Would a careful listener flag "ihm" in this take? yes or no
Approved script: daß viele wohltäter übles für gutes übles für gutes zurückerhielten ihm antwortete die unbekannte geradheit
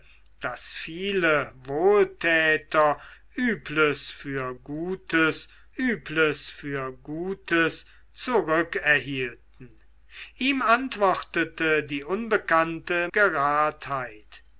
no